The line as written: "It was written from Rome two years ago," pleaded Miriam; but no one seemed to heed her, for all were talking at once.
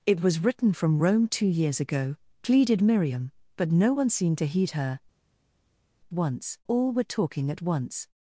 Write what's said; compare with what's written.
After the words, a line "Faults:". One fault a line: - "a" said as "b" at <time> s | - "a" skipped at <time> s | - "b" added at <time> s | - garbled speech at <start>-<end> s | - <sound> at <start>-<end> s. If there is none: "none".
"It was written from Rome two years ago," pleaded Miriam; but no one seemed to heed her, once all were talking at once.
Faults:
- "for" said as "once" at 6.1 s